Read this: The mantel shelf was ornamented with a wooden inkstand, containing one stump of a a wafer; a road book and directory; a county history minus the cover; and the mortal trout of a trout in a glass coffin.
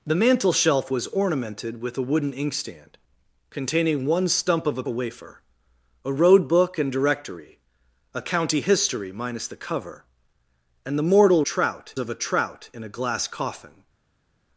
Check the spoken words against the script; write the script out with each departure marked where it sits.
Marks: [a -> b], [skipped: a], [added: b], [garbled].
The mantel shelf was ornamented with a wooden inkstand, containing one stump of a a wafer; a road book and directory; a county history minus the cover; and the mortal trout of a trout in a glass coffin.